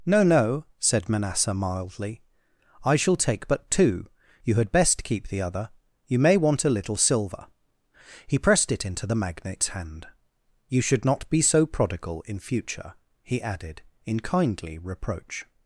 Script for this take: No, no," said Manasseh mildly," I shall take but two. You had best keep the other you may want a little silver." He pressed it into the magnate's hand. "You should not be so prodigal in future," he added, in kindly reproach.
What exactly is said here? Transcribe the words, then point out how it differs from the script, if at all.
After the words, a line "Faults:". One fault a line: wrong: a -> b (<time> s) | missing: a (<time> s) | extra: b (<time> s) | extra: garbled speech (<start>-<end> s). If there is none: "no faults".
No, no," said Manasseh mildly," I shall take but two. You had best keep the other you may want a little silver." He pressed it into the magnate's hand. "You should not be so prodigal in future," he added, in kindly reproach.
Faults:
no faults